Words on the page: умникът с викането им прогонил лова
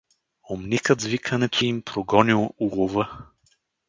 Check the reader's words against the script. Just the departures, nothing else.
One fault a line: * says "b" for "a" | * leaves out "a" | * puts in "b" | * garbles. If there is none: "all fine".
all fine